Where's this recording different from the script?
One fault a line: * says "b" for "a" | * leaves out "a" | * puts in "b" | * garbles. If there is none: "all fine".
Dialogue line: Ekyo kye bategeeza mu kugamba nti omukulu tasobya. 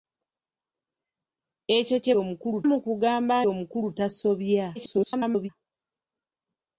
* says "omukulu" for "bategeeza"
* leaves out "nti"
* garbles